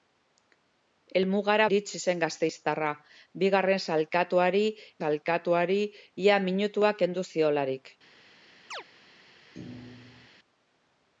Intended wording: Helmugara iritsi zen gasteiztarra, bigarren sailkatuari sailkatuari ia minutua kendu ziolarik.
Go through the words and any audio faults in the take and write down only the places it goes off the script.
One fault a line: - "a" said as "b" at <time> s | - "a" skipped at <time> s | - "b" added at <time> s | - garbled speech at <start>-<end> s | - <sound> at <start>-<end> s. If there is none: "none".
- chirp at 8.7-8.8 s
- thud at 9.5-10.3 s